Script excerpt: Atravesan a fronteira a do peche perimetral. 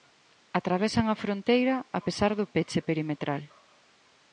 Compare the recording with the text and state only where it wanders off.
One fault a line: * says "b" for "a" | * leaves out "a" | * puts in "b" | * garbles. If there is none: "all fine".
* puts in "pesar"